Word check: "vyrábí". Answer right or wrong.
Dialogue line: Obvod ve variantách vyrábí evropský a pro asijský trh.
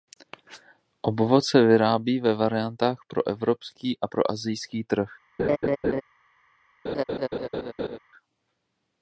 wrong